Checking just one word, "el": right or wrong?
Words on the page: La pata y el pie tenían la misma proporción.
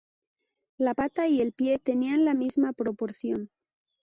right